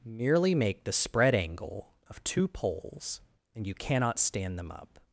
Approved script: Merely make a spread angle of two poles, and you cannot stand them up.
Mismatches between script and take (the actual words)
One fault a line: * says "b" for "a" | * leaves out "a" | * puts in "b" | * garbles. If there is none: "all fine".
* says "the" for "a"